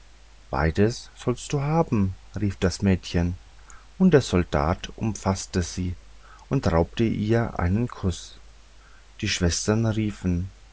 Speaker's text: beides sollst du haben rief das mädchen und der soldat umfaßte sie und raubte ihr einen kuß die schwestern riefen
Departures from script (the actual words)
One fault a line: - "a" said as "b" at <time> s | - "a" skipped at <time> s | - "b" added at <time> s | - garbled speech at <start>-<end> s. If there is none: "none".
none